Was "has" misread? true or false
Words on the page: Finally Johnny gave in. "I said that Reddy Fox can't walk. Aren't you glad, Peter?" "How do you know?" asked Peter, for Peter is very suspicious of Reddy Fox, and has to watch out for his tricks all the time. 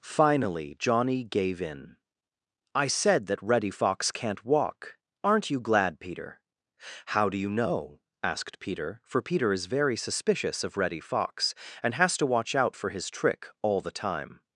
false